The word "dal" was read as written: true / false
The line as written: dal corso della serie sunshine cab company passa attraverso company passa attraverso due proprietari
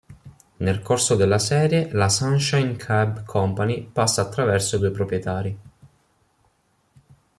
false